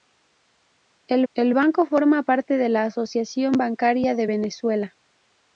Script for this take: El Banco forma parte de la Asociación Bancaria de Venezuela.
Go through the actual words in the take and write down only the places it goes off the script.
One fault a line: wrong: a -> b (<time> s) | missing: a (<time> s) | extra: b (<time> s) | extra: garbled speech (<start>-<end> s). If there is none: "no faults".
extra: el (1.3 s)